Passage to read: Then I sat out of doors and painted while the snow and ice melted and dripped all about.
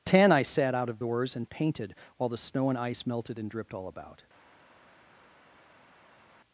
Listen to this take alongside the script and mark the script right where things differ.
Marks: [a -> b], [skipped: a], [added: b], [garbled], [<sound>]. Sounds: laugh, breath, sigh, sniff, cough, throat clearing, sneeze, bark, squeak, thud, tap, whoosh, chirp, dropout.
[Then -> Ten] I sat out of doors and painted while the snow and ice melted and dripped all about.